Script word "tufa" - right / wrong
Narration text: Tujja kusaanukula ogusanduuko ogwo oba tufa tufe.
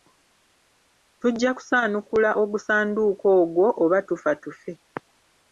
right